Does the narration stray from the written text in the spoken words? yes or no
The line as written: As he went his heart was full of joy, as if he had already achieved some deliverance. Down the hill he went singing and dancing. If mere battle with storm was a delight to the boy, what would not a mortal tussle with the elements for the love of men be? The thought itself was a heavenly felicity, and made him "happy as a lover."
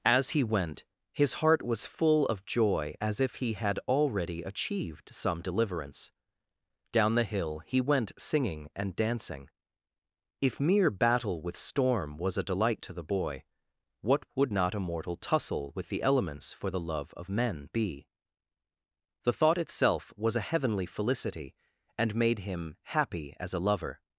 no